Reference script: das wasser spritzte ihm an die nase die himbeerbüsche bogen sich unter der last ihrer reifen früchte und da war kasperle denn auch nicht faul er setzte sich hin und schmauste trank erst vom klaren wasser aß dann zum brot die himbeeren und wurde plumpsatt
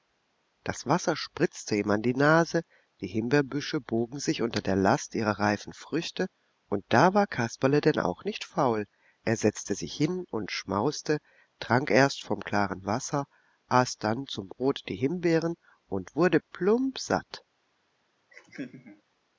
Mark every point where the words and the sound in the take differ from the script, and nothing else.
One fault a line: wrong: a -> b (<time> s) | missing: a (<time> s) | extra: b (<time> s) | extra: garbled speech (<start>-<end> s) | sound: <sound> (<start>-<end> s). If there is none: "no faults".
sound: laugh (18.3-19.0 s)